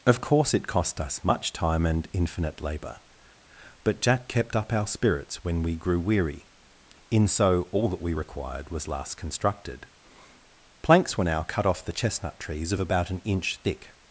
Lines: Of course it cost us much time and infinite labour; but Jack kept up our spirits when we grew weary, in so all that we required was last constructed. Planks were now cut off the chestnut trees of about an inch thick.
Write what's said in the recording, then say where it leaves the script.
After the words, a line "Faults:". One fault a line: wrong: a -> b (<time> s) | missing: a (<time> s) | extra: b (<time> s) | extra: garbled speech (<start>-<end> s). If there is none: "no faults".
Of course it cost us much time and infinite labour; but Jack kept up our spirits when we grew weary, in so all that we required was last constructed. Planks were now cut off the chestnut trees of about an inch thick.
Faults:
no faults